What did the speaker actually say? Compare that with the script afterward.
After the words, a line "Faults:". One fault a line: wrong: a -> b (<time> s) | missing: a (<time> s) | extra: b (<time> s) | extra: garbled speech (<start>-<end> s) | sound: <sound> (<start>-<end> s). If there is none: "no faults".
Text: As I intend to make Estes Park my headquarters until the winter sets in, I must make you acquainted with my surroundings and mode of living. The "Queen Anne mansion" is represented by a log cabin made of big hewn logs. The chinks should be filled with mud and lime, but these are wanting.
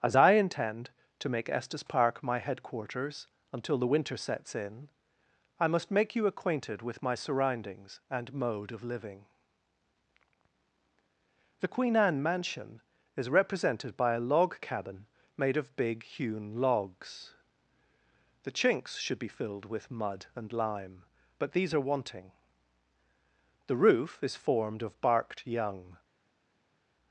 As I intend to make Estes Park my headquarters until the winter sets in, I must make you acquainted with my surroundings and mode of living. The "Queen Anne mansion" is represented by a log cabin made of big hewn logs. The chinks should be filled with mud and lime, but these are wanting. The roof is formed of barked young
Faults:
extra: The roof is formed of barked young (23.7 s)